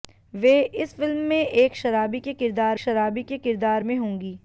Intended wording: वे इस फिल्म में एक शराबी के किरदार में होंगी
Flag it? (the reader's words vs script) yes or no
yes